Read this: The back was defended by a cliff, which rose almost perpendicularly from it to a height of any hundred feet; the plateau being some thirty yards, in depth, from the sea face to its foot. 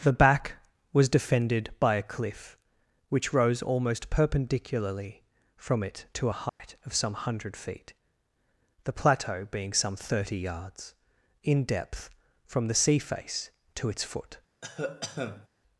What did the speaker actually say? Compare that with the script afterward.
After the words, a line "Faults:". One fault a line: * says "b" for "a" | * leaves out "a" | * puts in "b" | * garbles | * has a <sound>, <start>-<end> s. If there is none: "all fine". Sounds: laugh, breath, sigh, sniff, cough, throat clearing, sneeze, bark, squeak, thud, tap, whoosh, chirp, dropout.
The back was defended by a cliff, which rose almost perpendicularly from it to a height of some hundred feet; the plateau being some thirty yards, in depth, from the sea face to its foot.
Faults:
* has a dropout, 6.5-6.6 s
* says "some" for "any"
* has a cough, 14.6-15.5 s